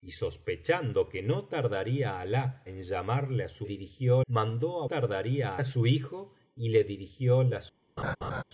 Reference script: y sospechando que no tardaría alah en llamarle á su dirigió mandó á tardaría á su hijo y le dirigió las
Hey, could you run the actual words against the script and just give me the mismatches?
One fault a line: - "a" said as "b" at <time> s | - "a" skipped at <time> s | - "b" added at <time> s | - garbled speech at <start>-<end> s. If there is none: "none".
none